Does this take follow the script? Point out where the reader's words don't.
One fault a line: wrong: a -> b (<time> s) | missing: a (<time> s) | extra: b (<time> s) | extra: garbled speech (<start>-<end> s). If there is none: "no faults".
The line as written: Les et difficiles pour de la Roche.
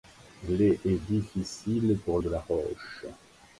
no faults